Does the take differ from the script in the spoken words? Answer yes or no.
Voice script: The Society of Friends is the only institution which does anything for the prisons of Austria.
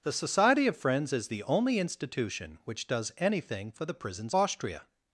yes